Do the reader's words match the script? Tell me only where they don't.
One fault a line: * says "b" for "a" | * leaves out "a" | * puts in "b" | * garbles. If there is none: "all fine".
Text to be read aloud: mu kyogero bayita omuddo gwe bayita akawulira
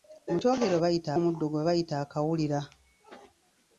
all fine